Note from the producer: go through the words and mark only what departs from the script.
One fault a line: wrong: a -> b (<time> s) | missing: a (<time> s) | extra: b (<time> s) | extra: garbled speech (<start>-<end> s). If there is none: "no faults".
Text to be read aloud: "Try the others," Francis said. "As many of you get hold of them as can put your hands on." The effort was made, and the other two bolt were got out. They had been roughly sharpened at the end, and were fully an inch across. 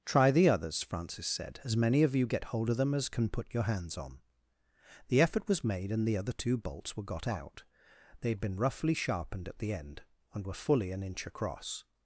wrong: bolt -> bolts (6.6 s)